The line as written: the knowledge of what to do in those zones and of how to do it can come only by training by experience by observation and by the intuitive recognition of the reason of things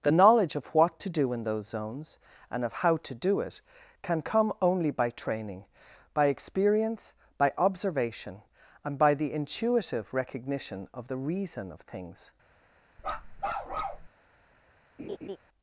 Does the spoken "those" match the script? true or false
true